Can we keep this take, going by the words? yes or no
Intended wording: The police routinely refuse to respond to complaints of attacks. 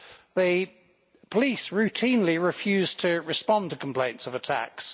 yes